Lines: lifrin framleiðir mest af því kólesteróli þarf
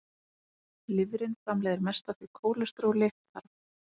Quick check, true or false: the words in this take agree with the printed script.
true